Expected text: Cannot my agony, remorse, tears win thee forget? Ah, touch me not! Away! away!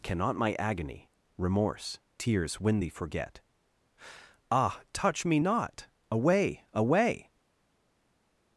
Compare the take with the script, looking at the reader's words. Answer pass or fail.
pass